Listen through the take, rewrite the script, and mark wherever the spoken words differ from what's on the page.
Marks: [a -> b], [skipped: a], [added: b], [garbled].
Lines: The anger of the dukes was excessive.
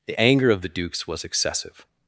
The anger of the dukes was excessive.